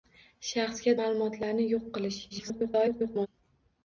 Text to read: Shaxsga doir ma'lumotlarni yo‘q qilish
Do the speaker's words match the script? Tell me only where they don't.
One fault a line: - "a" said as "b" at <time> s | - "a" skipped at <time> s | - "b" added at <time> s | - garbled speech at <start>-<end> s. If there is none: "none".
- "doir" skipped at 0.9 s
- garbled speech at 2.3-3.3 s